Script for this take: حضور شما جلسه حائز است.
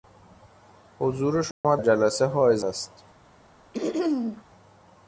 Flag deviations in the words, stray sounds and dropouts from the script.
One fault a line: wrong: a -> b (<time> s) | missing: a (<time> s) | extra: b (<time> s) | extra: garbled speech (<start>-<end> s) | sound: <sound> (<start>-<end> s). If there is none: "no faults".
sound: dropout (1.5-1.6 s)
sound: throat clearing (3.7-4.4 s)